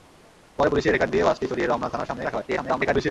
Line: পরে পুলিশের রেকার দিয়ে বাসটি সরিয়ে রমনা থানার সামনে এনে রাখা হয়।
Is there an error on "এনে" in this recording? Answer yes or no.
yes